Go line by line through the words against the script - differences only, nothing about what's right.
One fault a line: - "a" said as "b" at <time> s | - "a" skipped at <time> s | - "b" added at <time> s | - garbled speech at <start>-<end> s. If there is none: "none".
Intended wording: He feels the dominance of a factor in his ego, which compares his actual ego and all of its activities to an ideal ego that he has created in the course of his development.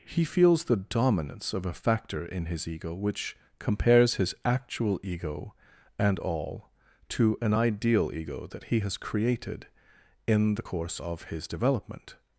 - "of its activities" skipped at 6.7 s